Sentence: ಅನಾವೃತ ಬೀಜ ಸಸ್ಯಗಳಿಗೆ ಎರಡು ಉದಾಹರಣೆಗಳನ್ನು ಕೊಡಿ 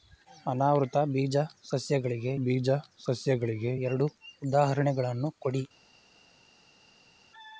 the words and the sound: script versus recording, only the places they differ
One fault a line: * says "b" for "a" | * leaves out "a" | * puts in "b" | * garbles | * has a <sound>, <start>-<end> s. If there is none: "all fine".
* puts in "ಬೀಜ ಸಸ್ಯಗಳಿಗೆ"